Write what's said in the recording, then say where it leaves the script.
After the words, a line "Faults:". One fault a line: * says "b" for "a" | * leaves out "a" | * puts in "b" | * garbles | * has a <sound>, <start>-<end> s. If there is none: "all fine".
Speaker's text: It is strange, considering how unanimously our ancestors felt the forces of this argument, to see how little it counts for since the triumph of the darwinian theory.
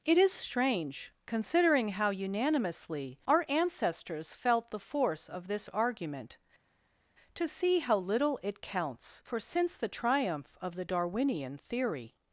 It is strange, considering how unanimously our ancestors felt the force of this argument, to see how little it counts for since the triumph of the darwinian theory.
Faults:
* says "force" for "forces"